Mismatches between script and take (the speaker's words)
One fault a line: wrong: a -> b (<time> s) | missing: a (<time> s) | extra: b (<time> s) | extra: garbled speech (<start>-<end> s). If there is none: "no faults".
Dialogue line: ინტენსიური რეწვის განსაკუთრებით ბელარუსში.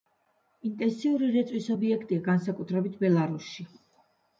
extra: ობიექტია (1.8 s)